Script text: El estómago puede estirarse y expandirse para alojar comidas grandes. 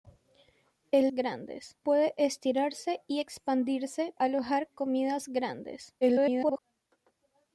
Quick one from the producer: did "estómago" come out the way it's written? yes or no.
no